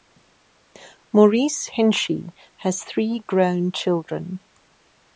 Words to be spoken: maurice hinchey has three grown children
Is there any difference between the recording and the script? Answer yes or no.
no